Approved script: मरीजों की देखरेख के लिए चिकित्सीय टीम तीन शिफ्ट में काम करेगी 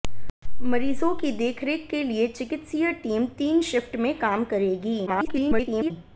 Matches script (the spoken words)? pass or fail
fail